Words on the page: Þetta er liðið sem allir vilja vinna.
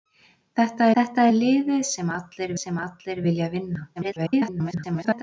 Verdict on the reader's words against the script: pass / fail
fail